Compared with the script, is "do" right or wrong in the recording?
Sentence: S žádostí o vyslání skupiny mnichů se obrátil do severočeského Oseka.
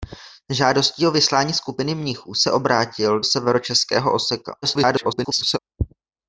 wrong